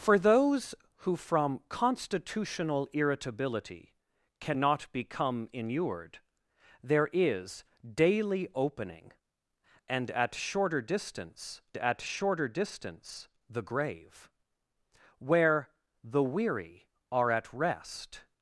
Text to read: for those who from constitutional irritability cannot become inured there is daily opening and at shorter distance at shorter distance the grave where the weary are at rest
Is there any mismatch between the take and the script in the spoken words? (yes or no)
no